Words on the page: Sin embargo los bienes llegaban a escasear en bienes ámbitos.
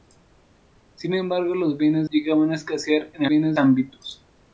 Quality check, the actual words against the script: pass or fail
pass